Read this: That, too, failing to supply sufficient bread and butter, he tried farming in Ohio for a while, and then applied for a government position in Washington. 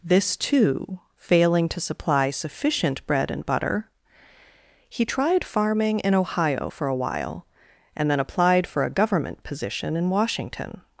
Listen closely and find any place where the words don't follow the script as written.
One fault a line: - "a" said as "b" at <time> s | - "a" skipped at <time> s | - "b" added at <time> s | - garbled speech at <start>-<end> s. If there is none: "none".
- "That" said as "This" at 0.0 s